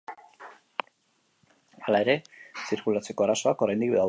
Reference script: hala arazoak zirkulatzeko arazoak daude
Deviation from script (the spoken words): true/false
true